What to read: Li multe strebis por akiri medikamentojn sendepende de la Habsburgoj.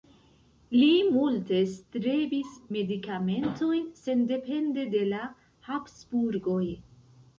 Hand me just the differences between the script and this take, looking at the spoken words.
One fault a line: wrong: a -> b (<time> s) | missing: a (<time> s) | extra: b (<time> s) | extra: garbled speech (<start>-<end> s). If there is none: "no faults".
missing: por akiri (2.5 s)